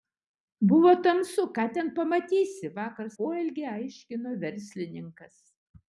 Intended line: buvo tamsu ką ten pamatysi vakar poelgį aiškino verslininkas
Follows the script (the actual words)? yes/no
yes